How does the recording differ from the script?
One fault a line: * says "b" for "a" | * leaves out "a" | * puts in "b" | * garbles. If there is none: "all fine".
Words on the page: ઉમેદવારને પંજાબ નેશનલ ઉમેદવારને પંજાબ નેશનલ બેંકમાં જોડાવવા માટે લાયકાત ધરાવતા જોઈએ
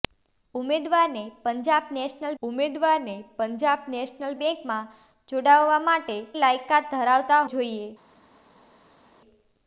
all fine